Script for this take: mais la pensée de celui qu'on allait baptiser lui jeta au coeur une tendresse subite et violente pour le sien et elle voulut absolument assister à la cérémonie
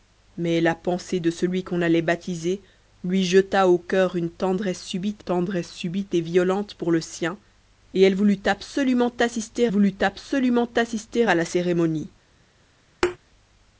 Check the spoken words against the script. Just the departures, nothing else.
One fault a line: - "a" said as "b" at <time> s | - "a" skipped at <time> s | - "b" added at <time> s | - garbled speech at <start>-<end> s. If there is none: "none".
- "tendresse subite" added at 5.2 s
- "voulut absolument assister" added at 9.7 s